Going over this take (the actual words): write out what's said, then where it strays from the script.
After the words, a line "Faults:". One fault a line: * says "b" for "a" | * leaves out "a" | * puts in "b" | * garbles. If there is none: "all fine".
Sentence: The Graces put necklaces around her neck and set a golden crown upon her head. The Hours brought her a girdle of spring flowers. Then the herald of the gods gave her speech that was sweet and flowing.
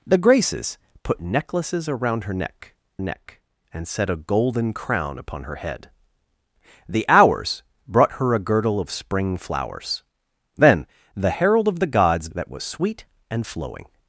The Graces put necklaces around her neck neck and set a golden crown upon her head. The Hours brought her a girdle of spring flowers. Then the herald of the gods that was sweet and flowing.
Faults:
* puts in "neck"
* leaves out "gave her speech"